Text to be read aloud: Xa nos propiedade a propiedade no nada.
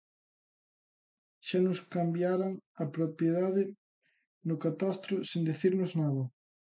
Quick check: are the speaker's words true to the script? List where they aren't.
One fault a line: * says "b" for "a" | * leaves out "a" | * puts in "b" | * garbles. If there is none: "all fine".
* says "cambiaran" for "propiedade"
* puts in "catastro sen dicirnos"